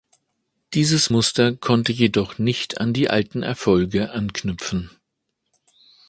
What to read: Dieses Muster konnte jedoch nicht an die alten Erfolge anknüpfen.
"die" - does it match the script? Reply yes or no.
yes